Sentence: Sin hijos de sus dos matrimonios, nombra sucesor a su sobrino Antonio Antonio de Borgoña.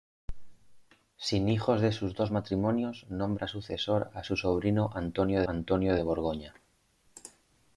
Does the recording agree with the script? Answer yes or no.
yes